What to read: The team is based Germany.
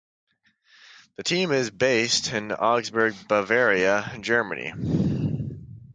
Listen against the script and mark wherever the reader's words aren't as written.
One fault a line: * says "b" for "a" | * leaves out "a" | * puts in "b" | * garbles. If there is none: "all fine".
* puts in "in Augsburg Bavaria"